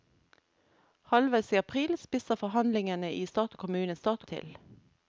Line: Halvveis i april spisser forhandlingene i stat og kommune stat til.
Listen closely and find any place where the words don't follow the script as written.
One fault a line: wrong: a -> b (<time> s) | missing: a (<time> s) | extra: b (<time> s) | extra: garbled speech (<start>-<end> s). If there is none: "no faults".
no faults